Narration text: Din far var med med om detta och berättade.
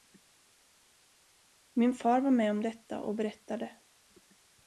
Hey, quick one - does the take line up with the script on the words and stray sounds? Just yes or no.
no